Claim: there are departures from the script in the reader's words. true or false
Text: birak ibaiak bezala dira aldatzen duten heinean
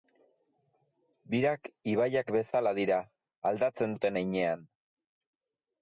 false